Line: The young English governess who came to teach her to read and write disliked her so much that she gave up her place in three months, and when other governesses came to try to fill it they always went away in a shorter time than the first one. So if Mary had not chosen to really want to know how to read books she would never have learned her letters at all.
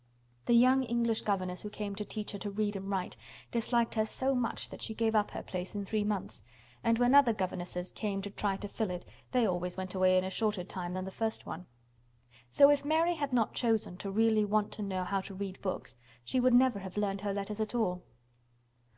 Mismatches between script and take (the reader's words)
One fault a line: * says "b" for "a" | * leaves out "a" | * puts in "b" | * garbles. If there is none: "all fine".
all fine